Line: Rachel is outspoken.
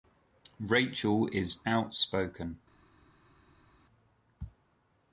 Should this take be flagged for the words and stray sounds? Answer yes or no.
no